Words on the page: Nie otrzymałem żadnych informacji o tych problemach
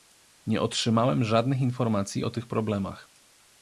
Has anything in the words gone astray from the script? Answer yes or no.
no